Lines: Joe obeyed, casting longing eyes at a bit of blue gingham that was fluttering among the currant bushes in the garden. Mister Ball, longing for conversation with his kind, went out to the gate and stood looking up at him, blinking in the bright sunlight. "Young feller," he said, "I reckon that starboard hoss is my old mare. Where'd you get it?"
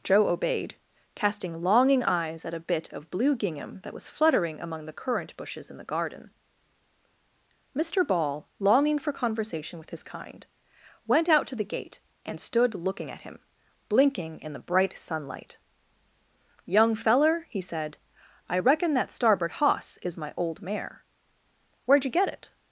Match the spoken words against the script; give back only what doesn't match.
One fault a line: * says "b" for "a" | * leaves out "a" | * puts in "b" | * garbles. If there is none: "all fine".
* leaves out "up"